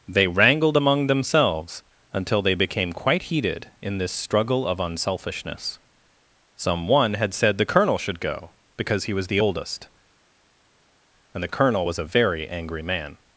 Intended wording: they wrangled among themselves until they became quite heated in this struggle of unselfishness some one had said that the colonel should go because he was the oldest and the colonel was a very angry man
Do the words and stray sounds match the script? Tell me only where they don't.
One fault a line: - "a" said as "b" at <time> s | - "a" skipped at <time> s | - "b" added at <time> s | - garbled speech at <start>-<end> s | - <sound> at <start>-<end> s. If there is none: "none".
- "that" skipped at 7.6 s